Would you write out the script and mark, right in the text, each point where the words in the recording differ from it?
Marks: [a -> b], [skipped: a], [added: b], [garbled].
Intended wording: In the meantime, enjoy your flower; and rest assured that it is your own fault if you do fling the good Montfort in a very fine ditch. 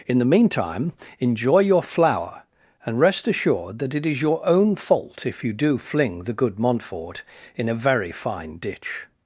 In the meantime, enjoy your flower; and rest assured that it is your own fault if you do fling the good Montfort in a very fine ditch.